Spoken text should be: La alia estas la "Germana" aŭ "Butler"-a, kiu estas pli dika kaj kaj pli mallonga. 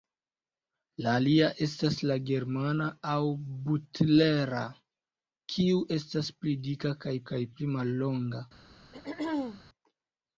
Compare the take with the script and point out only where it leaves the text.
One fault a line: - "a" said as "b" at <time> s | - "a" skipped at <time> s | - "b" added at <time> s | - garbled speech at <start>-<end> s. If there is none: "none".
none